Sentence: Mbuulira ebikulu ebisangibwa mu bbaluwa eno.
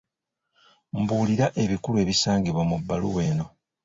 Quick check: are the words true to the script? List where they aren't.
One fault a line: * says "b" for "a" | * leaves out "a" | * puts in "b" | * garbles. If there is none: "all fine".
all fine